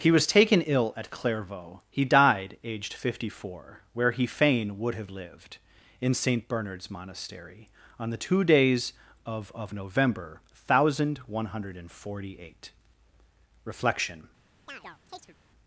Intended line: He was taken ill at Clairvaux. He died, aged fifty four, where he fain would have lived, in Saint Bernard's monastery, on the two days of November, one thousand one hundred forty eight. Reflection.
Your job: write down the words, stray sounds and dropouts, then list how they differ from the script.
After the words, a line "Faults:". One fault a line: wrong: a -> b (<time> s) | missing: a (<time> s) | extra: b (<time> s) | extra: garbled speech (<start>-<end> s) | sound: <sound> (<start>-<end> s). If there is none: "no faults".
He was taken ill at Clairvaux. He died, aged fifty four, where he fain would have lived, in Saint Bernard's monastery, on the two days of of November, one thousand one hundred forty eight. Reflection.
Faults:
extra: of (9.5 s)
sound: chirp (14.7-15.4 s)